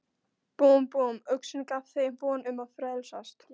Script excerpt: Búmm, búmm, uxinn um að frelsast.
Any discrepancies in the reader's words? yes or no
yes